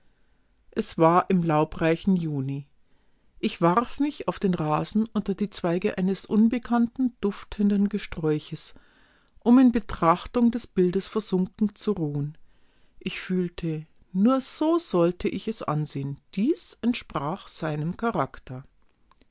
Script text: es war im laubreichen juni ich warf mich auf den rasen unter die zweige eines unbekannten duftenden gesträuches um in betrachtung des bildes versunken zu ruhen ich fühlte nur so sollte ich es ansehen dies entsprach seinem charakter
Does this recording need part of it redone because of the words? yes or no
no